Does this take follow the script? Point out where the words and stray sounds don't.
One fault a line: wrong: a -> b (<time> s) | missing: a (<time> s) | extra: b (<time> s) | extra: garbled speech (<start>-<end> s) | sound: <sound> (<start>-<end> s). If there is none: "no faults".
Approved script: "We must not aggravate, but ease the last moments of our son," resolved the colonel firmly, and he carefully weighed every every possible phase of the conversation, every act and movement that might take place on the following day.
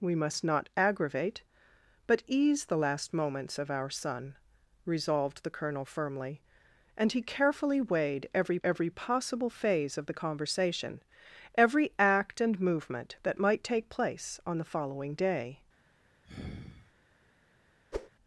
sound: sigh (16.2-16.9 s)
sound: whoosh (17.9-18.1 s)